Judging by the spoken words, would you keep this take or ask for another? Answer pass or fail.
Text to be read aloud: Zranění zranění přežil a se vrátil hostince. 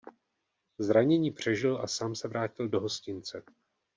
fail